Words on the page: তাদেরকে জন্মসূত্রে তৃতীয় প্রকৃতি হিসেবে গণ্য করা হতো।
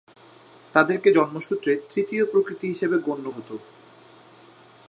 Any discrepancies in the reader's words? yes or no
yes